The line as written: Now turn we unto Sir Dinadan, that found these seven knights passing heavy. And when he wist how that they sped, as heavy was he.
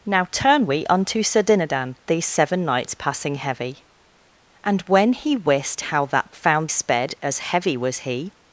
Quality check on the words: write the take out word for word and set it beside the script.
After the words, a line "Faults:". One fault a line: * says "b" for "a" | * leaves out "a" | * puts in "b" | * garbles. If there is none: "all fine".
Now turn we unto Sir Dinadan, these seven knights passing heavy. And when he wist how that found sped, as heavy was he.
Faults:
* leaves out "that found"
* says "found" for "they"